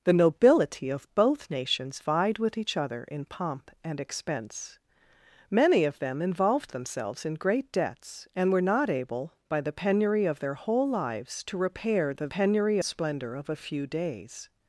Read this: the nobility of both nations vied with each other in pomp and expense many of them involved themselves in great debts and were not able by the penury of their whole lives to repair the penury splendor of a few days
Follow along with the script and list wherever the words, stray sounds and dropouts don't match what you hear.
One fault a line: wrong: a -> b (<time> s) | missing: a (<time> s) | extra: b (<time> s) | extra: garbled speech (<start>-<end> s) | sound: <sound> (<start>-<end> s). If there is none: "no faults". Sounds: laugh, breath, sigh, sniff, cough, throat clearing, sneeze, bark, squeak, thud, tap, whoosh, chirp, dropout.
no faults